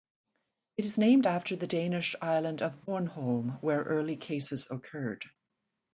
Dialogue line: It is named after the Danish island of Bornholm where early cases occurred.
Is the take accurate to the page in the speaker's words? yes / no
yes